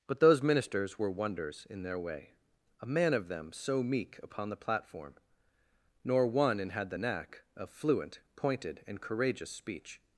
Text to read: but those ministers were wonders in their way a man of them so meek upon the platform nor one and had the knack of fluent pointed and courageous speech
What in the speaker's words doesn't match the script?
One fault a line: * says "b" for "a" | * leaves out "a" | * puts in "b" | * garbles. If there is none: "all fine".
all fine